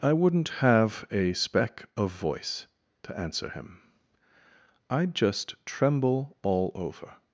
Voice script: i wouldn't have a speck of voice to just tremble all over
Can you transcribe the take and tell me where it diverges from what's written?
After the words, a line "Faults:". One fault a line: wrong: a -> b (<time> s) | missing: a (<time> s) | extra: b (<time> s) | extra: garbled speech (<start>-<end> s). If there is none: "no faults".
i wouldn't have a speck of voice to answer him i'd just tremble all over
Faults:
extra: answer him i'd (3.2 s)